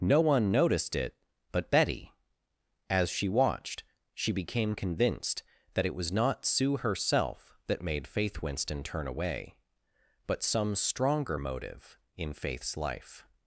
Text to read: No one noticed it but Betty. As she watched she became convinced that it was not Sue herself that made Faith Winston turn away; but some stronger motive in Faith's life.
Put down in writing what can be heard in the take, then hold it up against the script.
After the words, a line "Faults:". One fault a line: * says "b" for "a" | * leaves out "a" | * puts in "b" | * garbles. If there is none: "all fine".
No one noticed it but Betty. As she watched she became convinced that it was not Sue herself that made Faith Winston turn away; but some stronger motive in Faith's life.
Faults:
all fine